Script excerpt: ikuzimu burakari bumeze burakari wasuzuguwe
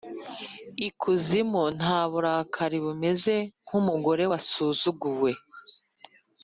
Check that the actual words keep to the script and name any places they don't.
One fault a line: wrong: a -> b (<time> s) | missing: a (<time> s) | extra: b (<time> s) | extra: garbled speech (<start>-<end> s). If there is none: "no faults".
extra: nta (1.8 s)
wrong: burakari -> nkumugore (3.6 s)